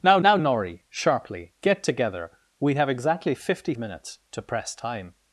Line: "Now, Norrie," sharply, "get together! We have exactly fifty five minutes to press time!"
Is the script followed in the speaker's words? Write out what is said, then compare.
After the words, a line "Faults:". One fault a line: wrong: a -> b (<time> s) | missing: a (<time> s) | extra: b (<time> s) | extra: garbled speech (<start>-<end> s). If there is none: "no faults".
"Now now, Norrie," sharply, "get together! We have exactly fifty minutes to press time!"
Faults:
extra: now (0.2 s)
missing: five (3.7 s)